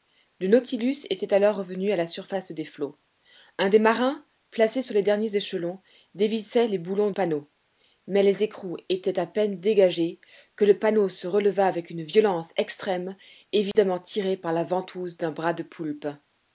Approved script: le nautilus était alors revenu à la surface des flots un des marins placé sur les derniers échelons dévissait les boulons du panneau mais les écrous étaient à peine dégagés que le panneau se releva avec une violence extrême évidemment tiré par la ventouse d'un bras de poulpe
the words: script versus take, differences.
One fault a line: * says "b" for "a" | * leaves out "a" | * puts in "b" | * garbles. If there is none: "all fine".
* leaves out "du"